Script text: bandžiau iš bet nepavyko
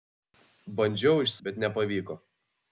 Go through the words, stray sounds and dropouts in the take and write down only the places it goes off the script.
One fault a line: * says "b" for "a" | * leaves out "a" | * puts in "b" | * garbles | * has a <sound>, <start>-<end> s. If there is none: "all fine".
all fine